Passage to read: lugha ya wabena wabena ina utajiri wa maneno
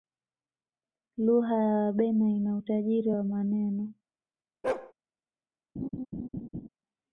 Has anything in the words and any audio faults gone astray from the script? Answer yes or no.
yes